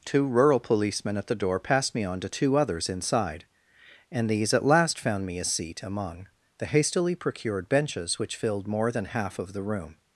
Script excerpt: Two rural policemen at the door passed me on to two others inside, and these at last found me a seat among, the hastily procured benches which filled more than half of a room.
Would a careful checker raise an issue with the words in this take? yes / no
yes